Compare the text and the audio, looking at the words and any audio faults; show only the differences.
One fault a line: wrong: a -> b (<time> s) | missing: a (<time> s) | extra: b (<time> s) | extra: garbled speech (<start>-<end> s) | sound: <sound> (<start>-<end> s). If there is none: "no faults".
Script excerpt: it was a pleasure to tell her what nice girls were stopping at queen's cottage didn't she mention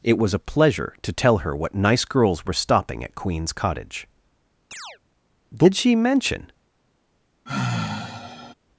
sound: chirp (4.7-5.0 s)
wrong: didn't -> did (5.5 s)
sound: sigh (7.5-8.5 s)